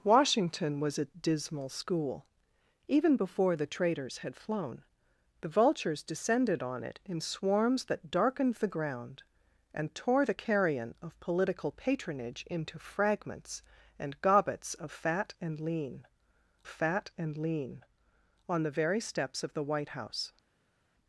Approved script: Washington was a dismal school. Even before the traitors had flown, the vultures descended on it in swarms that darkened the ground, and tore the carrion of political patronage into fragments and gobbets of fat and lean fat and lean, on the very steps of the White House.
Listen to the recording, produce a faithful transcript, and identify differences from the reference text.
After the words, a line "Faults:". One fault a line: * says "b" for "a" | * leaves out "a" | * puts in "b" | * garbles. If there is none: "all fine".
Washington was a dismal school. Even before the traitors had flown, the vultures descended on it in swarms that darkened the ground, and tore the carrion of political patronage into fragments and gobbets of fat and lean fat and lean, on the very steps of the White House.
Faults:
all fine